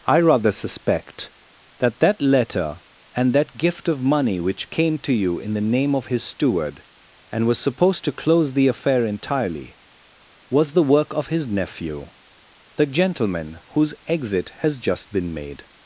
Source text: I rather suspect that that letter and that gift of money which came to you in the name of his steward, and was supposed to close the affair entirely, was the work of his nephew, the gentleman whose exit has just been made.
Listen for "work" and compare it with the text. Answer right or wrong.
right